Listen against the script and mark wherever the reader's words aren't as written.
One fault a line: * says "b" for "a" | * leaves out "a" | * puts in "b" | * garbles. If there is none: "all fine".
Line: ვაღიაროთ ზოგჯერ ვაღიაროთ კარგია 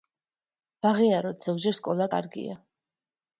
* says "სკოლა" for "ვაღიაროთ"